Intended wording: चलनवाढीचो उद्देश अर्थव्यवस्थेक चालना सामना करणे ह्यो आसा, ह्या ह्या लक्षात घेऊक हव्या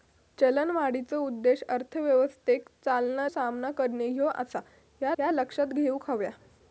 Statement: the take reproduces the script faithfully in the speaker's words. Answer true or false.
true